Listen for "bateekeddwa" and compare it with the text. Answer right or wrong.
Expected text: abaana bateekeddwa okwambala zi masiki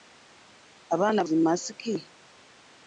wrong